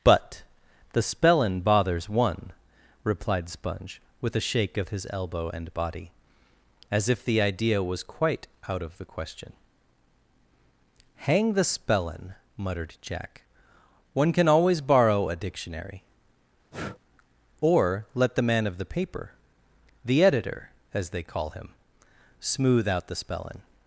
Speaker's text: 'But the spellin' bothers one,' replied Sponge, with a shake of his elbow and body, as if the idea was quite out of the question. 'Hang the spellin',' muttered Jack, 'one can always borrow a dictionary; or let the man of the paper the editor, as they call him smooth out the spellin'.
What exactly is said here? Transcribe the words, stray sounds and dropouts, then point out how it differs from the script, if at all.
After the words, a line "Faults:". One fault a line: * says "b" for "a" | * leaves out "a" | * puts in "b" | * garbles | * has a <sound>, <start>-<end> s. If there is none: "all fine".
'But the spellin' bothers one,' replied Sponge, with a shake of his elbow and body, as if the idea was quite out of the question. 'Hang the spellin',' muttered Jack, 'one can always borrow a dictionary; or let the man of the paper the editor, as they call him smooth out the spellin'.
Faults:
* has a breath, 16.7-17.0 s